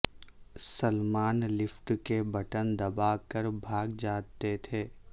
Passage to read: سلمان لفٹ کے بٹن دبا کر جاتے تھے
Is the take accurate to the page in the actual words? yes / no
no